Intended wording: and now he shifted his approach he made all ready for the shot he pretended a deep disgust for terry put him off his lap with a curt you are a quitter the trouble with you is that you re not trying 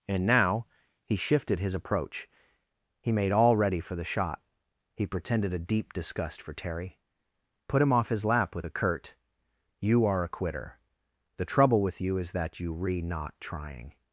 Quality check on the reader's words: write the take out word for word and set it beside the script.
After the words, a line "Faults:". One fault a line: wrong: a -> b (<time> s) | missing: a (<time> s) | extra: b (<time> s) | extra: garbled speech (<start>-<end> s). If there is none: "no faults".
and now he shifted his approach he made all ready for the shot he pretended a deep disgust for terry put him off his lap with a curt you are a quitter the trouble with you is that you re not trying
Faults:
no faults